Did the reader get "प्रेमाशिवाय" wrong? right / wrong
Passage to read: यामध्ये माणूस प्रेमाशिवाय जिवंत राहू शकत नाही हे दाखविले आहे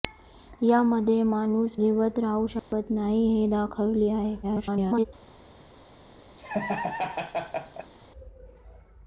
wrong